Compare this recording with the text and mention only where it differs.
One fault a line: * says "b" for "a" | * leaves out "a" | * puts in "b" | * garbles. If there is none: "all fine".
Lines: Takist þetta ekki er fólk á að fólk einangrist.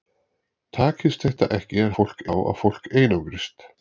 all fine